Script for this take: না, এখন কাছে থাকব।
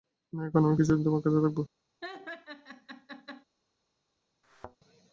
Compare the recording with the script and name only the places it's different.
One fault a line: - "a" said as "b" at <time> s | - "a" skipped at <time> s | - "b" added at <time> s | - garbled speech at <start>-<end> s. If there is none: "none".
- "আমি কিছুদিন তোমার" added at 0.6 s